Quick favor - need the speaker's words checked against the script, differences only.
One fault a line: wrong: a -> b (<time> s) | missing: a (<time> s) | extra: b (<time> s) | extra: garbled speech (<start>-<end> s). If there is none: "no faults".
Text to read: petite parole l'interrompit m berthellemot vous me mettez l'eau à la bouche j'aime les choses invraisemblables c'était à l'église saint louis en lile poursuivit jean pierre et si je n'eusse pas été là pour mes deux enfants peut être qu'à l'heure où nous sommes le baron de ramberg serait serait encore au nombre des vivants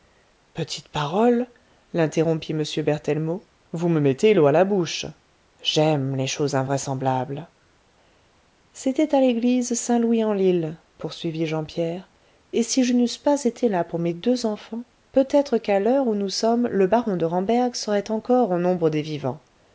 missing: serait (18.1 s)